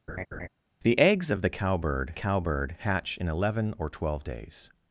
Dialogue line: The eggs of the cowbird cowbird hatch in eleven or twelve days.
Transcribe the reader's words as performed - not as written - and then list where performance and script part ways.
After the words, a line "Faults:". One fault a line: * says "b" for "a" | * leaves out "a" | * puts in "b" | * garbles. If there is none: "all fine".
The eggs of the cowbird cowbird hatch in eleven or twelve days.
Faults:
all fine